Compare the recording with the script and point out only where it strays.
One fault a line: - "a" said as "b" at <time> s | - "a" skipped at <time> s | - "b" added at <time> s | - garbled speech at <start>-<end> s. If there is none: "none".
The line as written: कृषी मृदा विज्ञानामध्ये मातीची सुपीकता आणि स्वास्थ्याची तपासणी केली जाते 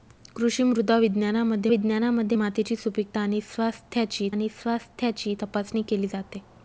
- "विज्ञानामध्ये" added at 1.7 s
- "आणि स्वास्थ्याची" added at 4.3 s